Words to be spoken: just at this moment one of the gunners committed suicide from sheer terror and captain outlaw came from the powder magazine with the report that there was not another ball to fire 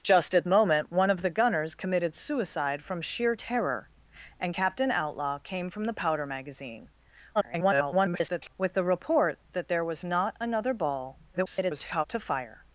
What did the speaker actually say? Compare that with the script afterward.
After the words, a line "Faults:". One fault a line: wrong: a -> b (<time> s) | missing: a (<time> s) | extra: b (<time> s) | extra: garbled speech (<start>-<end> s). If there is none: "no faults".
just at moment one of the gunners committed suicide from sheer terror and captain outlaw came from the powder magazine [garbled] with the report that there was not another ball [garbled] to fire
Faults:
missing: this (0.5 s)
extra: garbled speech (7.3-8.5 s)
extra: garbled speech (11.3-12.0 s)